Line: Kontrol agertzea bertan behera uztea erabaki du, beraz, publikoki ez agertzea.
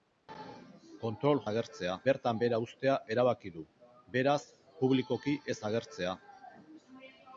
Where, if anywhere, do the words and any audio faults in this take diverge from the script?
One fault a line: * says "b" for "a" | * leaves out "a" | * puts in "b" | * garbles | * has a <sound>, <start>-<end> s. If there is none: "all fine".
all fine